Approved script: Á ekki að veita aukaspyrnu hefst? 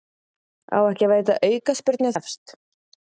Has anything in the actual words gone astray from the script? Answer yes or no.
no